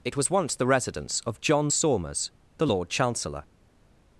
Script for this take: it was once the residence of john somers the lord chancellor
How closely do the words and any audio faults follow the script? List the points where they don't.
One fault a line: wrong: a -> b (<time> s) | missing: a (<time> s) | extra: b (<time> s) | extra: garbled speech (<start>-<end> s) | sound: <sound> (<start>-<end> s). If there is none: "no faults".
no faults